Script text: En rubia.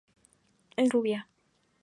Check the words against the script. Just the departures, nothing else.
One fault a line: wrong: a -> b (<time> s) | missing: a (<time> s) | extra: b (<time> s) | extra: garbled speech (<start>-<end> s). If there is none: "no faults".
no faults